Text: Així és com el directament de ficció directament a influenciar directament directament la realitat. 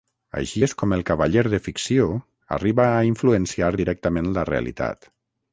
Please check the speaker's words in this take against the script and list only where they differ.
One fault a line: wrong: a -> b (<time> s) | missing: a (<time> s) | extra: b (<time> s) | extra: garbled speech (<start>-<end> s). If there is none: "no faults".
wrong: directament -> cavaller (1.1 s)
wrong: directament -> arriba (2.6 s)
missing: directament (4.3 s)